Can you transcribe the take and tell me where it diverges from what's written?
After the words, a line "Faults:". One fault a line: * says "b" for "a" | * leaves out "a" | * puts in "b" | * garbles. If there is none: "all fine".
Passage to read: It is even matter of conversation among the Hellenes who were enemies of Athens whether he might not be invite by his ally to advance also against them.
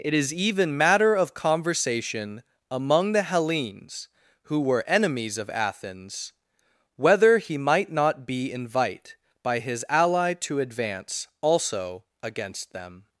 It is even matter of conversation among the Hellenes who were enemies of Athens whether he might not be invite by his ally to advance also against them.
Faults:
all fine